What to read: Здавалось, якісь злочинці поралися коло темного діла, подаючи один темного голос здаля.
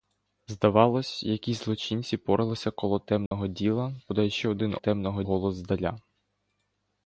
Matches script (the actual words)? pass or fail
pass